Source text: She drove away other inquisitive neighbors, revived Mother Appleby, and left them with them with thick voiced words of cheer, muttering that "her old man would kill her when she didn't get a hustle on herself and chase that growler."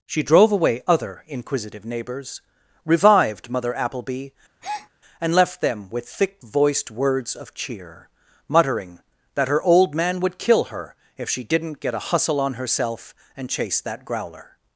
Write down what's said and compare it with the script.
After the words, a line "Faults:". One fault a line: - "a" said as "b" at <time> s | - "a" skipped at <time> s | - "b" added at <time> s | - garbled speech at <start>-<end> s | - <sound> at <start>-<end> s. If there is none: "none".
She drove away other inquisitive neighbors, revived Mother Appleby, and left them with thick voiced words of cheer, muttering that "her old man would kill her if she didn't get a hustle on herself and chase that growler."
Faults:
- breath at 4.6-4.9 s
- "them with" skipped at 6.1 s
- "when" said as "if" at 11.2 s